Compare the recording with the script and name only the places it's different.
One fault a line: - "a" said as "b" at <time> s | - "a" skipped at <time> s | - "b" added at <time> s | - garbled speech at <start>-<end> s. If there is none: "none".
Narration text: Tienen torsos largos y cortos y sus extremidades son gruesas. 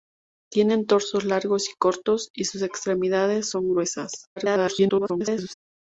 - garbled speech at 4.4-5.5 s